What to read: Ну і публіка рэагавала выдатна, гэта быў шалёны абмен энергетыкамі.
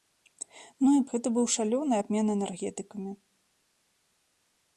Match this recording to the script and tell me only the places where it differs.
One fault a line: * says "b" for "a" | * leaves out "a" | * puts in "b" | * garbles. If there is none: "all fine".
* leaves out "публіка рэагавала выдатна"